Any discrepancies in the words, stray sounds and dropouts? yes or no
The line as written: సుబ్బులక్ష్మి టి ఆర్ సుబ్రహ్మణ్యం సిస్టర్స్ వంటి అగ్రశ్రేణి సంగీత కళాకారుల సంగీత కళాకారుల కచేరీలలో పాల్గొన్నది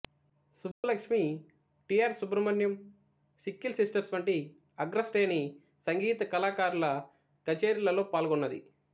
yes